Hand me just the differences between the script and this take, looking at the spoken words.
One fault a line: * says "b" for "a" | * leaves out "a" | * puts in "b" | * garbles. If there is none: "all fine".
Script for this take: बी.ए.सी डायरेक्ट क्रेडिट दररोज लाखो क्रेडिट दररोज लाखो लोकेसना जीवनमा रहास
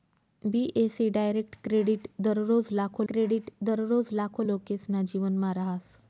all fine